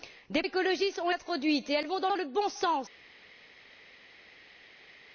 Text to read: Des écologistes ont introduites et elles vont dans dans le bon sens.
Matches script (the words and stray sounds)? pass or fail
pass